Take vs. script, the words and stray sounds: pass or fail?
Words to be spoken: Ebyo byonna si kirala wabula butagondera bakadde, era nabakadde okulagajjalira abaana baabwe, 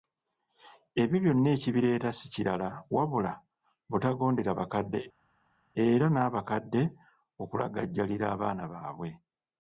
fail